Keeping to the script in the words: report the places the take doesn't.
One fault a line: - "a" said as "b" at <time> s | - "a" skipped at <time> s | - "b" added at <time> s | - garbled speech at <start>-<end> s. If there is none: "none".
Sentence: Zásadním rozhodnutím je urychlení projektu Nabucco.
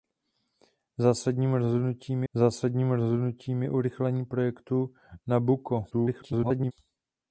- "zásadním rozhodnutím" added at 2.3 s
- garbled speech at 5.9-6.7 s